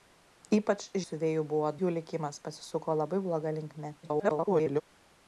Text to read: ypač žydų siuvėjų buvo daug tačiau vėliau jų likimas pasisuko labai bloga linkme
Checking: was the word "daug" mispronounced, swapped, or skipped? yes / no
yes